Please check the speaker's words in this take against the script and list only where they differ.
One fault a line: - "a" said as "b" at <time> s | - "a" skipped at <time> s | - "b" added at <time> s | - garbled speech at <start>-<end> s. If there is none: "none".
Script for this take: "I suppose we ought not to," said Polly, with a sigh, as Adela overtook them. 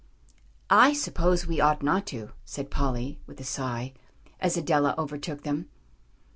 none